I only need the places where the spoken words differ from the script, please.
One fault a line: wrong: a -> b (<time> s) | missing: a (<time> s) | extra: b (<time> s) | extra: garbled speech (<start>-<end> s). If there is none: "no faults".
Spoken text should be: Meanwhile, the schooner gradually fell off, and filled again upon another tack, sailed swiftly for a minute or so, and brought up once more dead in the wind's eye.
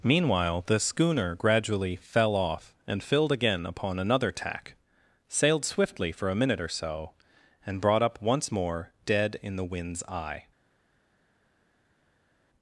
no faults